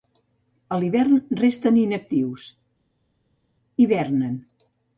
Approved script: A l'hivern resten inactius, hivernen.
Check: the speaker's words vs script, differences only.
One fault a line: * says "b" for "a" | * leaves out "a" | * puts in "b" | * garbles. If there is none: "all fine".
all fine